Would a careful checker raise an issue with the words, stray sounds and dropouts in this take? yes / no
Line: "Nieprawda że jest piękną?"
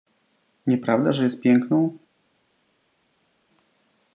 no